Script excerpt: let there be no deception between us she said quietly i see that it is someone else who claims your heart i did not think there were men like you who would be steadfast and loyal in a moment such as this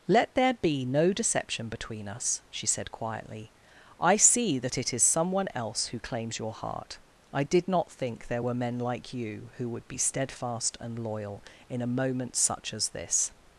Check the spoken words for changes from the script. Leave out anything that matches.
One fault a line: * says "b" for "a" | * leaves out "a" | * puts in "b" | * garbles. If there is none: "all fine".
all fine